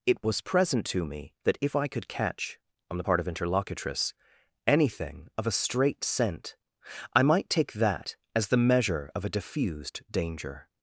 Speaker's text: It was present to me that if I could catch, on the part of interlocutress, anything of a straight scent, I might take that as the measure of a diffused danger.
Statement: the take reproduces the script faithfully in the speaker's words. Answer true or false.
true